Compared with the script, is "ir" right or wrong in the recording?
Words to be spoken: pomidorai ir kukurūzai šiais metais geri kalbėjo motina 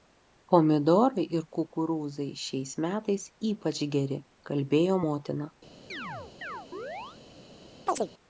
right